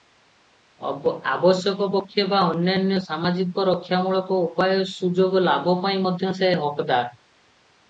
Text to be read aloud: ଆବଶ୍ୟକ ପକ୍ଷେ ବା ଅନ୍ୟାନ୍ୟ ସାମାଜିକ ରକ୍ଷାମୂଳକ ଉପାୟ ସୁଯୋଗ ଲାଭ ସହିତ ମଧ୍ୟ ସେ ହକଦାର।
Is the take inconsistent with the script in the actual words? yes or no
yes